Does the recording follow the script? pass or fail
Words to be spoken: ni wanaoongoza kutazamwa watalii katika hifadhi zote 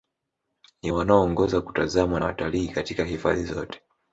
pass